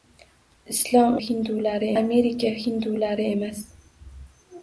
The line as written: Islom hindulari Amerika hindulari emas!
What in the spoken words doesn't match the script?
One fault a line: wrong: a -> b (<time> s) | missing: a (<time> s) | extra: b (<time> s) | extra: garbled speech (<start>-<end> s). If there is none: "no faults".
no faults